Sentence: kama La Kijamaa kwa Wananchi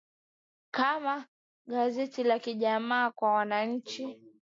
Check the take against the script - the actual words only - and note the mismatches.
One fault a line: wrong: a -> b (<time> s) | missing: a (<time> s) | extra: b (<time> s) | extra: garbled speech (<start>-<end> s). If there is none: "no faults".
extra: Gazeti (1.6 s)